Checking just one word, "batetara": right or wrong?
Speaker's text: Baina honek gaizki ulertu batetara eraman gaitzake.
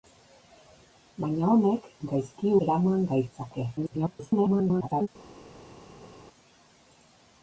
wrong